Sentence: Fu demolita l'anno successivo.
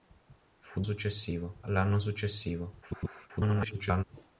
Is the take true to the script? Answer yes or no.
no